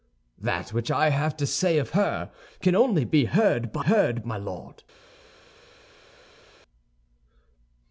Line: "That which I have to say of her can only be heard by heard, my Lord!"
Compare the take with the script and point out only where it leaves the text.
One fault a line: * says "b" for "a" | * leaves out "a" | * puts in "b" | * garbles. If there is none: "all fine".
all fine